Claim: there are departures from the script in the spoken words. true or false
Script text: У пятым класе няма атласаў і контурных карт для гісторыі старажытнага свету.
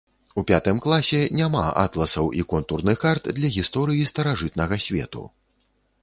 false